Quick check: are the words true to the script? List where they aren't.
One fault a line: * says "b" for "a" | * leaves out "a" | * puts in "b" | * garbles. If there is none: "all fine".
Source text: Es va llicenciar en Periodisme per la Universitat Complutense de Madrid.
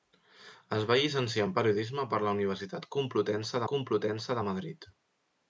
* puts in "Complutense"